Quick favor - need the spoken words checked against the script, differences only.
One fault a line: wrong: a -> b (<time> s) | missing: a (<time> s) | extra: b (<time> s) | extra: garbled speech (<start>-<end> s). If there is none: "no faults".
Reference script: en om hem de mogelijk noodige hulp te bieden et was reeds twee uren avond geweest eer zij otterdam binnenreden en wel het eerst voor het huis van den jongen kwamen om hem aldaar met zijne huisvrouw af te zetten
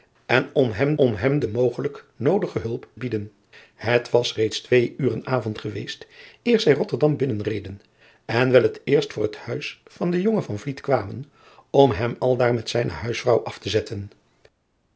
extra: om hem (1.0 s)
missing: te (2.9 s)